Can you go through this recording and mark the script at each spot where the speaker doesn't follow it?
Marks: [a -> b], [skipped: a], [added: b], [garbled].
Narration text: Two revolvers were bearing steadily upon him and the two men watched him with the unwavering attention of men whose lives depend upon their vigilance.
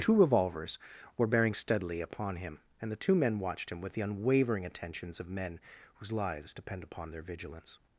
Two revolvers were bearing steadily upon him and the two men watched him with the unwavering [attention -> attentions] of men whose lives depend upon their vigilance.